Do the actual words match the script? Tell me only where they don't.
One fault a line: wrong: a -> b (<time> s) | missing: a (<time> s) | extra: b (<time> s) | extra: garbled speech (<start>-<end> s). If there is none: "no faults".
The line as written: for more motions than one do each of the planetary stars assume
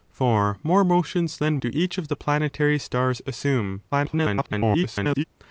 missing: one (1.6 s)
extra: garbled speech (3.9-5.2 s)